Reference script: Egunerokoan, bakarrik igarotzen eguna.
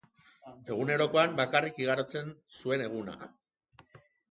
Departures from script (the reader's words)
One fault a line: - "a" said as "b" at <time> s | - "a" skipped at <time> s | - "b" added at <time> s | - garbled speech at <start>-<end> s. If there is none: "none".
- "zuen" added at 2.6 s